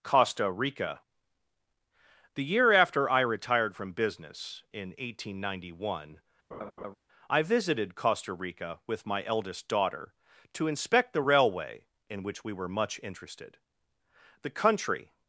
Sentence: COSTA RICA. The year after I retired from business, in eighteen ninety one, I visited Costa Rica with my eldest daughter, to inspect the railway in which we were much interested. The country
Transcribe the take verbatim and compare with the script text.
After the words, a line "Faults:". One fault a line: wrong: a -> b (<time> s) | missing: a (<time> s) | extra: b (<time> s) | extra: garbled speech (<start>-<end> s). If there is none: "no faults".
COSTA RICA. The year after I retired from business, in eighteen ninety one, I visited Costa Rica with my eldest daughter, to inspect the railway in which we were much interested. The country
Faults:
no faults